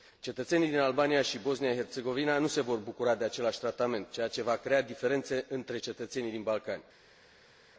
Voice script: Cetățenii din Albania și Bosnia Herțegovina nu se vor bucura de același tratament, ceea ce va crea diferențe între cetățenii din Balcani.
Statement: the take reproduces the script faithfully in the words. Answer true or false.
true